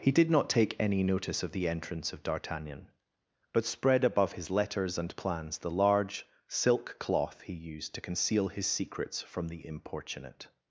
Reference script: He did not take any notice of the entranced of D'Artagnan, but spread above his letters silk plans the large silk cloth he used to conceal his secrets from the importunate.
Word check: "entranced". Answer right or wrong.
wrong